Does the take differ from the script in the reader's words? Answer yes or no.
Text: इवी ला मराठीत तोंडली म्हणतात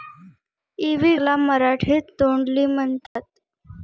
no